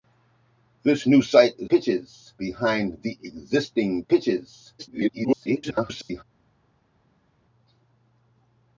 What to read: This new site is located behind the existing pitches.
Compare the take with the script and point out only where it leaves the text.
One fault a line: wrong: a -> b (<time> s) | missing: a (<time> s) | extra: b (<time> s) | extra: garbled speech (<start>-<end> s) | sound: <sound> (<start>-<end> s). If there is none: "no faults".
wrong: located -> pitches (1.7 s)
extra: garbled speech (4.8-6.2 s)